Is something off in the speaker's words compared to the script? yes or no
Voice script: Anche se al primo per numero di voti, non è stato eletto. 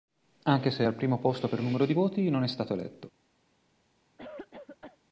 yes